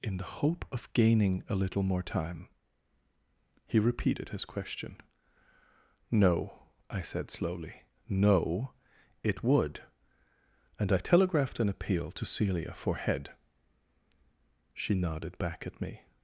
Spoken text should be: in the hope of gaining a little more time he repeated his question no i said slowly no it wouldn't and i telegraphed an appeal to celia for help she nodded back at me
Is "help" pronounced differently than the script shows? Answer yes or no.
yes